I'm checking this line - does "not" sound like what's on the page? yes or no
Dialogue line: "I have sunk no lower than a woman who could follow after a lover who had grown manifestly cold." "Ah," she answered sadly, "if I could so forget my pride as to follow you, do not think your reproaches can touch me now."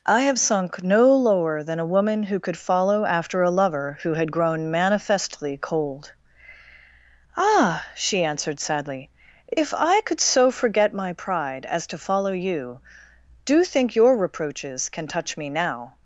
no